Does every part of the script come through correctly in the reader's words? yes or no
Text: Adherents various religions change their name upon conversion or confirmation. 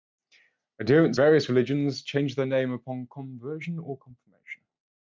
yes